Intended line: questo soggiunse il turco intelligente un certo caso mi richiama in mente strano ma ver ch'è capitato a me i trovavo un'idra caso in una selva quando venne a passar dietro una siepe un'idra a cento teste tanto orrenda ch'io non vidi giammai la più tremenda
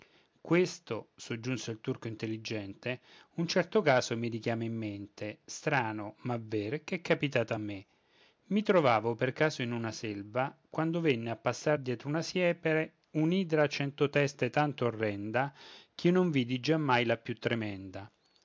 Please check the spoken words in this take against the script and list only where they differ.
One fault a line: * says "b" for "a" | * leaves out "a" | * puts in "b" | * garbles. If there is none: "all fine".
* says "per" for "un'idra"